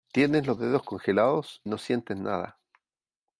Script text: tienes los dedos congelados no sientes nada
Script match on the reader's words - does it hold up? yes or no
yes